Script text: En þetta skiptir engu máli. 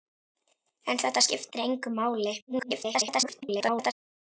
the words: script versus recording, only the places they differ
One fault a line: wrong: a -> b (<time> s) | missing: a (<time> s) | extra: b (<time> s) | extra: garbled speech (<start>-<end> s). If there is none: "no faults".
extra: garbled speech (2.5-3.9 s)